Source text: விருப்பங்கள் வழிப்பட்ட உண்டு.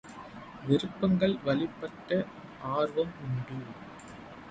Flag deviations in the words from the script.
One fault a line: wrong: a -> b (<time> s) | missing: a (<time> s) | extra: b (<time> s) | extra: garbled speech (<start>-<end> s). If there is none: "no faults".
extra: ஆர்வம் (2.7 s)